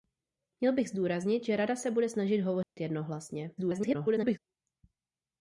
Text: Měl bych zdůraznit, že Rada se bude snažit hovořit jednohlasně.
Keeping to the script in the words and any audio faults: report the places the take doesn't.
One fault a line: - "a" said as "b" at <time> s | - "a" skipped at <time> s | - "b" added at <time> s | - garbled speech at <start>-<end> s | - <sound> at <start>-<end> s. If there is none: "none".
- dropout at 2.6-2.8 s
- garbled speech at 3.6-4.4 s